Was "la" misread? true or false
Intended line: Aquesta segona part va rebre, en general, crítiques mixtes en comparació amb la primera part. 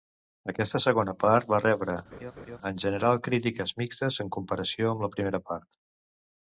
false